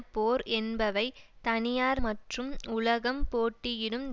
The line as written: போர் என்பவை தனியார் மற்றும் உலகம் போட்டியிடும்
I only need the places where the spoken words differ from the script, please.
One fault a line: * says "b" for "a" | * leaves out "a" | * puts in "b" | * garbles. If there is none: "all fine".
all fine